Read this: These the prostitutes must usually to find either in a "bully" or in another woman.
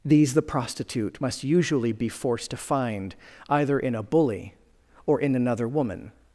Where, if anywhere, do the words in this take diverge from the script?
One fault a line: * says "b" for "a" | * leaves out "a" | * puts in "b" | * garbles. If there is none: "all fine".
* says "prostitute" for "prostitutes"
* puts in "be forced"